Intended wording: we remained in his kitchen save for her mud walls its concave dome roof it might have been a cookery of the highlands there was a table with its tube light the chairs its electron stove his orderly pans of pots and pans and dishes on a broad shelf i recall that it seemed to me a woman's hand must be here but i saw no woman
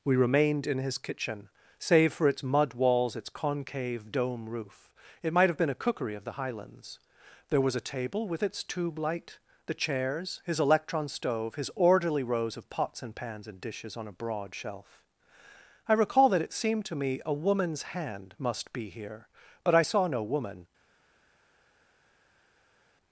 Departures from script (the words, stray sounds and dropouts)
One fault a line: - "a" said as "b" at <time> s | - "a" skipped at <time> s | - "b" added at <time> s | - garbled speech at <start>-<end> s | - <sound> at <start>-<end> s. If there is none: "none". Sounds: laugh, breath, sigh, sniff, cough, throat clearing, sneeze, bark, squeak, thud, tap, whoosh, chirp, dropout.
- "her" said as "its" at 2.3 s
- "its" said as "his" at 10.4 s
- "pans" said as "rows" at 12.2 s